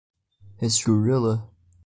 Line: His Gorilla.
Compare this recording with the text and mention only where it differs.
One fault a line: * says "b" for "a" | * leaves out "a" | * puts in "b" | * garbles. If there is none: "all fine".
all fine